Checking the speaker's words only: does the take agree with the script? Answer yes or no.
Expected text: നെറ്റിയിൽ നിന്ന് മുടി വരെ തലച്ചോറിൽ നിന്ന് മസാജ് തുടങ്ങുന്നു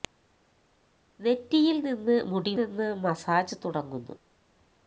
no